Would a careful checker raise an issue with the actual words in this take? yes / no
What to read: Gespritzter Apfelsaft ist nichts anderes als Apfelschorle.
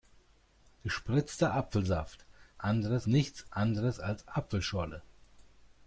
yes